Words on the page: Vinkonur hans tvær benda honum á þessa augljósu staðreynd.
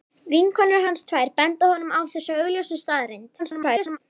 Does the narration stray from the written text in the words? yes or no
yes